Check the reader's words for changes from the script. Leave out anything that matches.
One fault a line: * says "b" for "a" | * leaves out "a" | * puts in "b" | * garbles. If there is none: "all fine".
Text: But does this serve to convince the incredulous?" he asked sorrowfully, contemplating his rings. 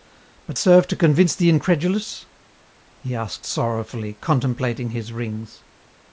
* leaves out "does this"